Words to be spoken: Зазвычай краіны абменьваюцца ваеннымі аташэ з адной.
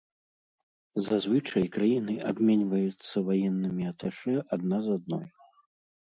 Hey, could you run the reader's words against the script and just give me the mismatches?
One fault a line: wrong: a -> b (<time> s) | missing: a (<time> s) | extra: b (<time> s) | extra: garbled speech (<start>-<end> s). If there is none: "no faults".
extra: адна (4.6 s)